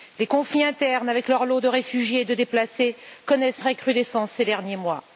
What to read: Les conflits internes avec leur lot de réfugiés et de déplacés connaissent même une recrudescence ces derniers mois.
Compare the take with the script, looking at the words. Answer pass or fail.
fail